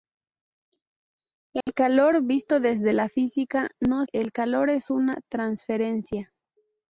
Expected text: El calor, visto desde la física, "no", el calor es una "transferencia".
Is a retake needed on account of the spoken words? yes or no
no